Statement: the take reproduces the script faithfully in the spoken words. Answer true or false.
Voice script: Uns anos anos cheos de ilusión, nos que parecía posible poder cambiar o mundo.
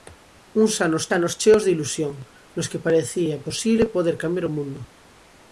true